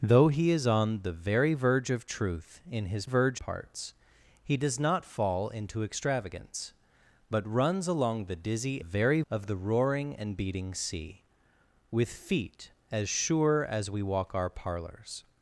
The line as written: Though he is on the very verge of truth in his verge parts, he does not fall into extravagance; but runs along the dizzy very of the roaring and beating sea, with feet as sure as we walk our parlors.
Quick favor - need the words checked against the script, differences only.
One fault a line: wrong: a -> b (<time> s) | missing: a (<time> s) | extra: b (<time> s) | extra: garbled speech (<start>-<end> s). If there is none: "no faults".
no faults